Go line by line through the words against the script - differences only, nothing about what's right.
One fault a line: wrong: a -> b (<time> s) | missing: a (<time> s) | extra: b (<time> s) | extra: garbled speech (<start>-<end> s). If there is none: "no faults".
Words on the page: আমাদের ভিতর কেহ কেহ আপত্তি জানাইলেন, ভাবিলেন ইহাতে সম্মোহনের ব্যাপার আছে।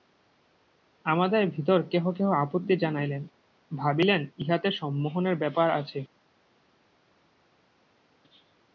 no faults